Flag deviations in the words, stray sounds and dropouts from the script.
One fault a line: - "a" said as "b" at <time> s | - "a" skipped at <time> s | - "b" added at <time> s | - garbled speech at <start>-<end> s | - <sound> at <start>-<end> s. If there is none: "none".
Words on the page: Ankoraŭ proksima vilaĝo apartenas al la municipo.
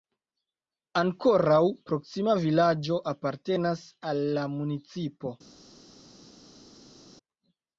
none